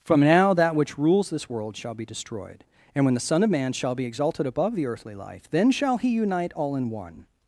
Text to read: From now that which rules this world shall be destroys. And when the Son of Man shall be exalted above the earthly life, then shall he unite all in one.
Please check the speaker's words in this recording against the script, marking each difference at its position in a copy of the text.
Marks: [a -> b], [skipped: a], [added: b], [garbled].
From now that which rules this world shall be [destroys. -> destroyed] And when the Son of Man shall be exalted above the earthly life, then shall he unite all in one.